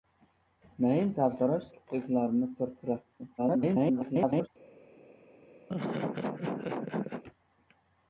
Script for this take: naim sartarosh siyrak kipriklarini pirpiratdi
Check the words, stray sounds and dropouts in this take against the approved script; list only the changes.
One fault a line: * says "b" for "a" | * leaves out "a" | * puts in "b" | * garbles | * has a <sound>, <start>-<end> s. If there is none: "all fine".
* leaves out "siyrak"
* garbles
* has a laugh, 5.7-7.2 s